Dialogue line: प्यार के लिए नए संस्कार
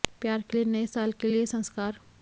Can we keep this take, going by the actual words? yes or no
no